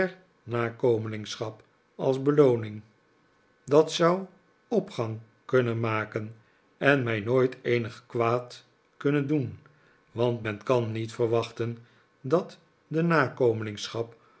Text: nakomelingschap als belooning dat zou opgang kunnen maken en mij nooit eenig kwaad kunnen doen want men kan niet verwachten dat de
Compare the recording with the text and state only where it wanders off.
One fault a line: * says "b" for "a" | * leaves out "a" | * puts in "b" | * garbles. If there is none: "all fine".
all fine